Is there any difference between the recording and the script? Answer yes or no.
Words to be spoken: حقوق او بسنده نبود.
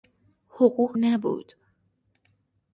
yes